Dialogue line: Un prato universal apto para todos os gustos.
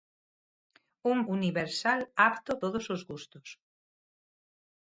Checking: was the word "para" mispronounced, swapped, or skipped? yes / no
yes